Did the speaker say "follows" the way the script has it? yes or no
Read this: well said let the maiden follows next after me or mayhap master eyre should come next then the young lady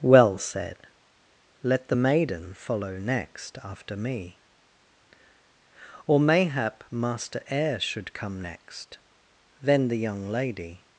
no